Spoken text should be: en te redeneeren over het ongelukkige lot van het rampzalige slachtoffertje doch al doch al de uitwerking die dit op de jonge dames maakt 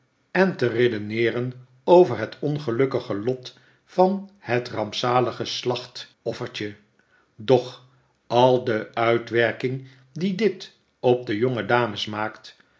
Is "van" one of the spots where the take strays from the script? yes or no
no